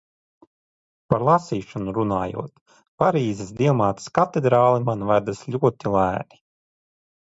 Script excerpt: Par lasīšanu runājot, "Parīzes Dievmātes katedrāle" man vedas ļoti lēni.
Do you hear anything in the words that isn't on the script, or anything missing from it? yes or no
no